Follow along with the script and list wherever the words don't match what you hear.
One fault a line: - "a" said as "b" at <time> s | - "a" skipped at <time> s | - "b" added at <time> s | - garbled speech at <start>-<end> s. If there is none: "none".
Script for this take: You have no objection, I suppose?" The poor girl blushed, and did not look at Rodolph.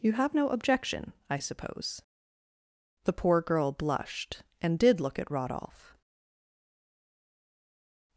- "not" skipped at 5.0 s